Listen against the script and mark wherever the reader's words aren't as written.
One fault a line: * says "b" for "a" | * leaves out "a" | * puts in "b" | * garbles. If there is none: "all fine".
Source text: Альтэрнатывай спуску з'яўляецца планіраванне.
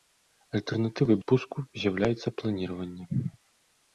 all fine